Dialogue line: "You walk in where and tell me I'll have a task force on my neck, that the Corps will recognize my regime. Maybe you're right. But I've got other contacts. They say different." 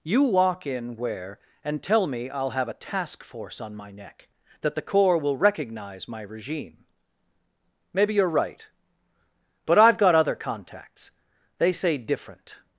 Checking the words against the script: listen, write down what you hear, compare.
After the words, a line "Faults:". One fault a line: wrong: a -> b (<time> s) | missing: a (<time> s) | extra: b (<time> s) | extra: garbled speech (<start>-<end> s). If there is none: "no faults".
"You walk in where and tell me I'll have a task force on my neck, that the Corps will recognize my regime. Maybe you're right. But I've got other contacts. They say different."
Faults:
no faults